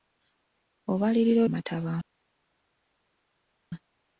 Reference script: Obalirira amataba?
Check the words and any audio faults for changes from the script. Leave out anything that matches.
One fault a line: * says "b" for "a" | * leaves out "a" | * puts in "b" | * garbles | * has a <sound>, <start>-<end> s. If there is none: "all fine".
all fine